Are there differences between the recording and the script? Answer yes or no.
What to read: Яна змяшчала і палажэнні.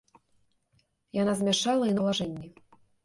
no